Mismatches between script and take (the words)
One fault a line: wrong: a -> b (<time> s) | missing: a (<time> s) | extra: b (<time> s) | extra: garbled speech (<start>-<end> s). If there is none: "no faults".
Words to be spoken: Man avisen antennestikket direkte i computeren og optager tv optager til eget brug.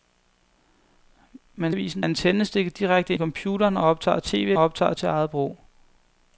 no faults